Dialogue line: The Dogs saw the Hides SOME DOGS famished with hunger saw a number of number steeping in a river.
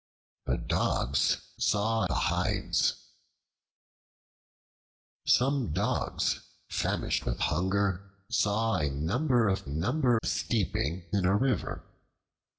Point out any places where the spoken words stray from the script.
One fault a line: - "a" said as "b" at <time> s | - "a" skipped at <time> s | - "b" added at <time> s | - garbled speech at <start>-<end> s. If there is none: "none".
none